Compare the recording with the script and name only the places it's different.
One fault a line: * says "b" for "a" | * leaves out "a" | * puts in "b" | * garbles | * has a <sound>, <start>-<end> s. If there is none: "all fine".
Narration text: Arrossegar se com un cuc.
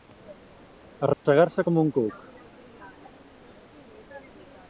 * has a dropout, 1.1-1.3 s